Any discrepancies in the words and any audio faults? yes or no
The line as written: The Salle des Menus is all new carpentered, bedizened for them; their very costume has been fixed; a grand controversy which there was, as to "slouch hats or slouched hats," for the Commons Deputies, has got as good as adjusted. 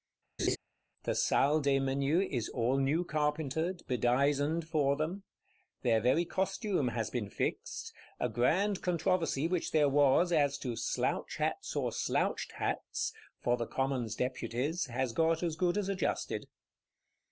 yes